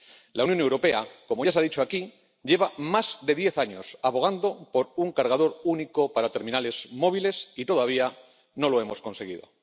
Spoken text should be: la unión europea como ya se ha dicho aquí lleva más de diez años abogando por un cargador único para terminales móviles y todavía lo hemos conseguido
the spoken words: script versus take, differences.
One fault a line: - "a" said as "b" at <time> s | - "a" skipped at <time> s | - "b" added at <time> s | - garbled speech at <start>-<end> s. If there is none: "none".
- "no" added at 8.5 s